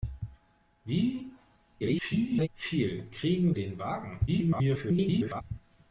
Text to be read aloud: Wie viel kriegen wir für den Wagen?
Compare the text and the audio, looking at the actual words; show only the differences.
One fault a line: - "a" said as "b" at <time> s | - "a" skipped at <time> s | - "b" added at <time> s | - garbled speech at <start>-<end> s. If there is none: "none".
- garbled speech at 1.8-2.5 s
- "wir für" skipped at 3.5 s
- garbled speech at 4.3-5.4 s